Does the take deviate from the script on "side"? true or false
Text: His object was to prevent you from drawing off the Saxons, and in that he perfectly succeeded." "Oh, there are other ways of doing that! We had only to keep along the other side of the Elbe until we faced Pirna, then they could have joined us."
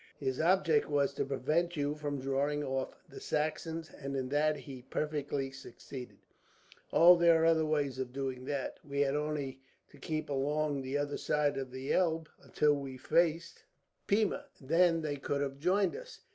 false